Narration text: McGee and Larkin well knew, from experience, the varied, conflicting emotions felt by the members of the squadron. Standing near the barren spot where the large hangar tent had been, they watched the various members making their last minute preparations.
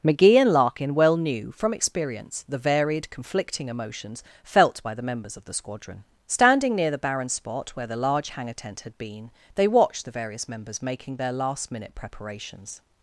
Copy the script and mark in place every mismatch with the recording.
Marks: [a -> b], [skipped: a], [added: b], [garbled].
McGee and Larkin well knew, from experience, the varied, conflicting emotions felt by the members of the squadron. Standing near the barren spot where the large hangar tent had been, they watched the various members making their last minute preparations.